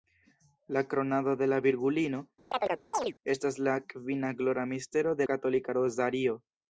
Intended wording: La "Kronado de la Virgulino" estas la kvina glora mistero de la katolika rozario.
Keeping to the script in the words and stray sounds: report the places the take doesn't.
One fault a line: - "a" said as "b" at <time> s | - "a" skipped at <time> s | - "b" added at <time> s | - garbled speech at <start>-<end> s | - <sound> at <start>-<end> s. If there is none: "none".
- chirp at 2.5-3.1 s
- "la" skipped at 5.3 s